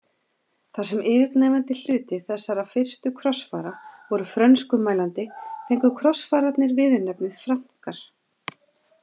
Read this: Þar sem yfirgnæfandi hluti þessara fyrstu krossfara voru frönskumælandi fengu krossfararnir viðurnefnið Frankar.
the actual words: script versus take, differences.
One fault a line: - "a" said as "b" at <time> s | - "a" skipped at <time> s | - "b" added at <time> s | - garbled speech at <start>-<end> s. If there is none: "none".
none